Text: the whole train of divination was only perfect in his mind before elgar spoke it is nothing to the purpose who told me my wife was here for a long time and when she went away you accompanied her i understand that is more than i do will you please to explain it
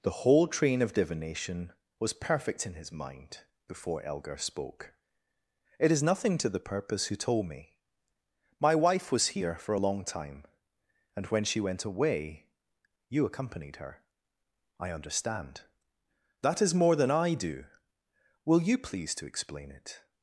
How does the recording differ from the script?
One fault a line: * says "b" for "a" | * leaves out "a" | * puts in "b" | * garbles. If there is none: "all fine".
* leaves out "only"